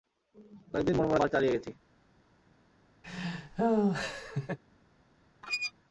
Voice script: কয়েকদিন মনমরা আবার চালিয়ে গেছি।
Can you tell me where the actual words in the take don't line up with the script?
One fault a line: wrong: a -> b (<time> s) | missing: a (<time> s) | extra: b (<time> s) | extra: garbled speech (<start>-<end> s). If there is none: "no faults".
no faults